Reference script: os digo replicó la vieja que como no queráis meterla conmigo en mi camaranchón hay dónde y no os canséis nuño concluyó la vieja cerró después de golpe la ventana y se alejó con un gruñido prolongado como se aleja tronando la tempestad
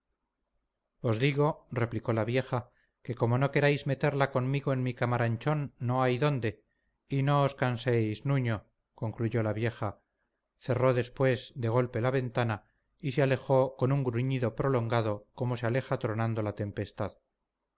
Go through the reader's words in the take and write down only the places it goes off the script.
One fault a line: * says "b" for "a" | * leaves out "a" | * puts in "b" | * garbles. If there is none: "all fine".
* puts in "no"